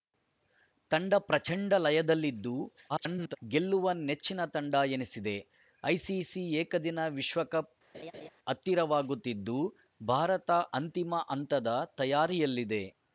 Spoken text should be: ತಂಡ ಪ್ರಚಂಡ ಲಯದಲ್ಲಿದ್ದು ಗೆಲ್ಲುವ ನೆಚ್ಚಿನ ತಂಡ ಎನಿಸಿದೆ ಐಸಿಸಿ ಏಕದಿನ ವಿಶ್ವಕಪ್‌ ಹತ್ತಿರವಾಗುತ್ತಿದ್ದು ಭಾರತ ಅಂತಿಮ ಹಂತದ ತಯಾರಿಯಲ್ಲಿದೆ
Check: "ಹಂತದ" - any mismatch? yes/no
no